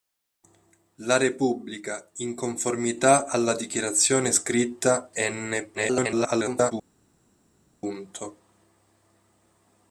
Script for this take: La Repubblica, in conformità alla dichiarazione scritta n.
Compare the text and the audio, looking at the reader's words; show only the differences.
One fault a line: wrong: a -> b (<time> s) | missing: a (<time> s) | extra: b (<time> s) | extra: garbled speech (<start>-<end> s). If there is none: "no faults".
extra: garbled speech (5.7-6.7 s)